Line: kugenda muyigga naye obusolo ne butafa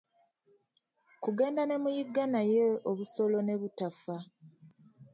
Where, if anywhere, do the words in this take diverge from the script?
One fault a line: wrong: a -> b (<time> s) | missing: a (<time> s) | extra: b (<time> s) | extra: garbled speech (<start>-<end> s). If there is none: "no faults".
extra: ne (1.6 s)